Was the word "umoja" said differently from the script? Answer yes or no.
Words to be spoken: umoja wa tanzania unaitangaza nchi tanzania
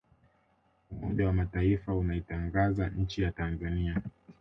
no